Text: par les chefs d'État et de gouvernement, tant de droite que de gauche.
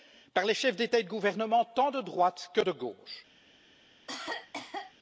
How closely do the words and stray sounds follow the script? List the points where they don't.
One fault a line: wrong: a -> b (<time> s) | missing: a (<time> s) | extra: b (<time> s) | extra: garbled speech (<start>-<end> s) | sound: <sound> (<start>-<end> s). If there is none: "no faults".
sound: cough (4.1-4.9 s)